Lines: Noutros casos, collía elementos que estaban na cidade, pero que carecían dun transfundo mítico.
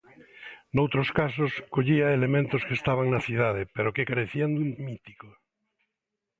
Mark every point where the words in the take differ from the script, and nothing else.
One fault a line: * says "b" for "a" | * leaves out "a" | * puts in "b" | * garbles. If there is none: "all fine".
* leaves out "transfundo"